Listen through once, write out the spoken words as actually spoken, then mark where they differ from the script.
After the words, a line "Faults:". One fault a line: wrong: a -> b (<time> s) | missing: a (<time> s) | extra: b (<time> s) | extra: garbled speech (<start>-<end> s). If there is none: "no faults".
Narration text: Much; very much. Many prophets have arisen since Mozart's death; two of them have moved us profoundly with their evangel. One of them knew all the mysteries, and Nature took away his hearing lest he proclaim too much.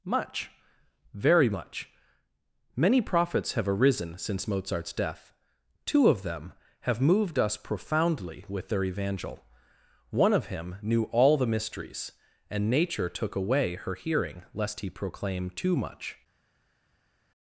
Much; very much. Many prophets have arisen since Mozart's death; two of them have moved us profoundly with their evangel. One of him knew all the mysteries, and Nature took away her hearing lest he proclaim too much.
Faults:
wrong: them -> him (10.5 s)
wrong: his -> her (13.7 s)